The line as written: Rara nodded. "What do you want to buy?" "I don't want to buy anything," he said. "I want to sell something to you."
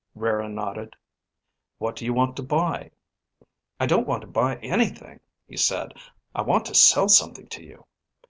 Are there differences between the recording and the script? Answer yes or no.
no